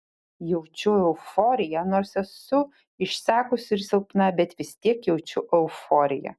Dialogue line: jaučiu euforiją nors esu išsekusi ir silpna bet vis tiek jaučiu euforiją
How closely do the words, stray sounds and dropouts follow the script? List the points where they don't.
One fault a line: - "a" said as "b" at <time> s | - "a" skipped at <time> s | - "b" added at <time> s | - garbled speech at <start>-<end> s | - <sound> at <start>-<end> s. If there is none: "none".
none